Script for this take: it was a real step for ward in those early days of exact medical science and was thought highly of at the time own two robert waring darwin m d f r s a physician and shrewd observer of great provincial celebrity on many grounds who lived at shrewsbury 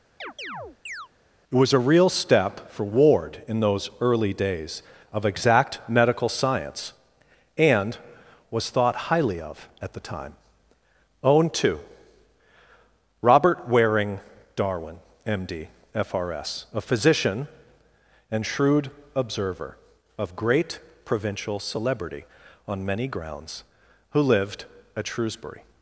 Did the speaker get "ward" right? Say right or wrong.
right